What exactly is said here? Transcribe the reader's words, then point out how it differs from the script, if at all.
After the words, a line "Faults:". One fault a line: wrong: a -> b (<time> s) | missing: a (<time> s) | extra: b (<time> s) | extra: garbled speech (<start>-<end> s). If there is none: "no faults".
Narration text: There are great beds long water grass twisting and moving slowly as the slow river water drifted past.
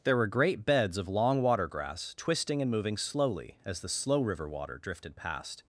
There were great beds of long water grass twisting and moving slowly as the slow river water drifted past.
Faults:
wrong: are -> were (0.2 s)
extra: of (1.0 s)